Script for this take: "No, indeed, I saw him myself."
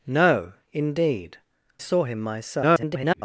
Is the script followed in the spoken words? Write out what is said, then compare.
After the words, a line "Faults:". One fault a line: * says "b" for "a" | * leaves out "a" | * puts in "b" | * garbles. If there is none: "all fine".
"No, indeed, saw him myself." [garbled]
Faults:
* leaves out "I"
* garbles